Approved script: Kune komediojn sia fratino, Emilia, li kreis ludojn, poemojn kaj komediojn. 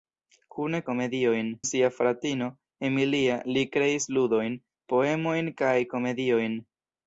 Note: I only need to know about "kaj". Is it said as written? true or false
true